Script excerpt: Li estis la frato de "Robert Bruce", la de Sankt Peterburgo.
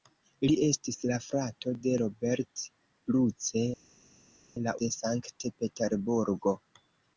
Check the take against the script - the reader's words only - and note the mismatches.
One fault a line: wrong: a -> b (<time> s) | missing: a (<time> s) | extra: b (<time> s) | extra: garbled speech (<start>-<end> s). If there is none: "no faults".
no faults